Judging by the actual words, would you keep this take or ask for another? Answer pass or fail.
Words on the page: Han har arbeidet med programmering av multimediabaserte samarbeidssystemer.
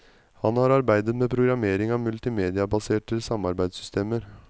pass